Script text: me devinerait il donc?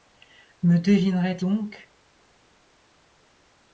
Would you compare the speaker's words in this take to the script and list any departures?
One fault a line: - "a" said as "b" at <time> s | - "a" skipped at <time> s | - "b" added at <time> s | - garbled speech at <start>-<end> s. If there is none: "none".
- "il" skipped at 1.4 s